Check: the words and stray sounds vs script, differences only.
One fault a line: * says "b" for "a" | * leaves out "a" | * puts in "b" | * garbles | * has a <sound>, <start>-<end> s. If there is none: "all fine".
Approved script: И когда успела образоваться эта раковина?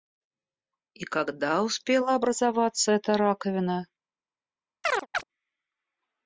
* has a chirp, 4.8-5.2 s